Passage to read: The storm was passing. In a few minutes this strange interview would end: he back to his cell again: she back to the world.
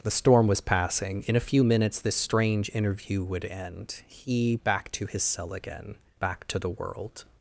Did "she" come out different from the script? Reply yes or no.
yes